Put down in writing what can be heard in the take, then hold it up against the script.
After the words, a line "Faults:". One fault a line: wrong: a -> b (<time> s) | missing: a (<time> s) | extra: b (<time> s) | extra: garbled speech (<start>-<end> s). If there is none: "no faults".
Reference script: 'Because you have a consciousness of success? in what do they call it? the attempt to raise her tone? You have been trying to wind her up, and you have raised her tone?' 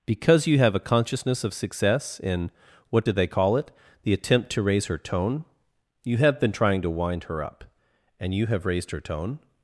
'Because you have a consciousness of success? in what do they call it? the attempt to raise her tone? You have been trying to wind her up, and you have raised her tone?'
Faults:
no faults